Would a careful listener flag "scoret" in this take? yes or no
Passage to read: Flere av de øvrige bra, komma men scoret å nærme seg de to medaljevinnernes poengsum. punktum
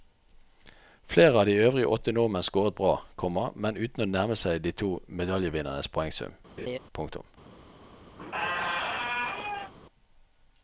yes